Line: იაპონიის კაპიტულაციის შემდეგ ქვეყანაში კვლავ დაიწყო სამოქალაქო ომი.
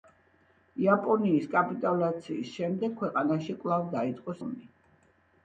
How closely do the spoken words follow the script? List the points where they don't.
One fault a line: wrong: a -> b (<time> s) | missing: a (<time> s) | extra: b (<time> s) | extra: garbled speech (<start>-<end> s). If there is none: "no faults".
missing: სამოქალაქო (4.4 s)